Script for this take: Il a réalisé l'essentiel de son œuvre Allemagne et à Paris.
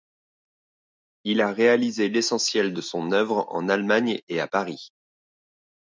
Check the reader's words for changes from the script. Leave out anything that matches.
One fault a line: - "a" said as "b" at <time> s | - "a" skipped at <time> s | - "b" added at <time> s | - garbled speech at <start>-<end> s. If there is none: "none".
- "en" added at 3.5 s